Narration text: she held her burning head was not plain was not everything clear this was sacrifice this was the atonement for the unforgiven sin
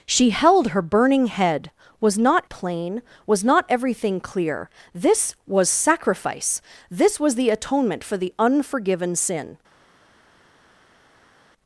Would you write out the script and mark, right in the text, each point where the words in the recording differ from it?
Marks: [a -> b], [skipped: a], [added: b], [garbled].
she held her burning head was not plain was not everything clear this was sacrifice this was the atonement for the unforgiven sin